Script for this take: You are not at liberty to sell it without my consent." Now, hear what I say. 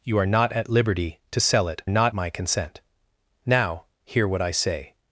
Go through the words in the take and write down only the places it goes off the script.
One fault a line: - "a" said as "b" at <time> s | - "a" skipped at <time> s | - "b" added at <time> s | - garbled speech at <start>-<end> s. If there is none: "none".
- "without" said as "not" at 1.9 s